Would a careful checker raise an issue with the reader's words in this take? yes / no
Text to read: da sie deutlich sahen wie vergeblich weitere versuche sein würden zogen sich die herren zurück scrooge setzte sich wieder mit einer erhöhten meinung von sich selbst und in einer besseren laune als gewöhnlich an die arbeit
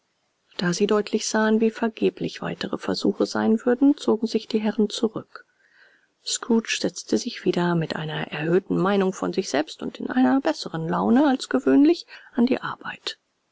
no